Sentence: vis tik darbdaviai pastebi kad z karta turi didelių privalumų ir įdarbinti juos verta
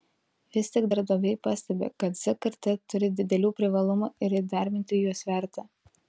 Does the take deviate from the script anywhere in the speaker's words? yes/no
no